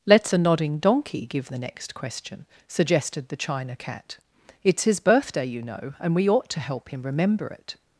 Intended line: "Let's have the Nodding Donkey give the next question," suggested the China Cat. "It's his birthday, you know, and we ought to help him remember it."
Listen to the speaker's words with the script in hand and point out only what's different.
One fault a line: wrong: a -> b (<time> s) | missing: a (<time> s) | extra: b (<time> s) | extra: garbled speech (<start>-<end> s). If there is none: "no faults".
missing: have (0.3 s)